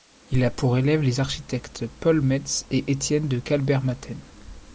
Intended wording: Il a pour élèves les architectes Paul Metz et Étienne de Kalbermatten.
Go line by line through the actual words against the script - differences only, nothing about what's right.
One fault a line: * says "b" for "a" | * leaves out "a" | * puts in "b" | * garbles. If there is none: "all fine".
all fine